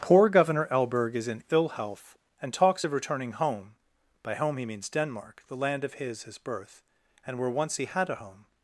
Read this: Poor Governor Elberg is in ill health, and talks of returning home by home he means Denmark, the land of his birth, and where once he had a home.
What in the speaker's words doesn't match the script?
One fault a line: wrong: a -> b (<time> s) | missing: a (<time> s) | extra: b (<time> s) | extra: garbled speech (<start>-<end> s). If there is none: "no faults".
extra: his (6.2 s)